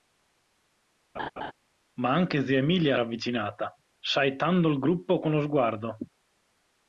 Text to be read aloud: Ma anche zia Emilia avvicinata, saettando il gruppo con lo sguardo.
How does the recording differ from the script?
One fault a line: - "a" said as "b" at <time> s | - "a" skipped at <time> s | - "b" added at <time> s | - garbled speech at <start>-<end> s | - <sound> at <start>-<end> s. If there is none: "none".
- laugh at 1.1-1.5 s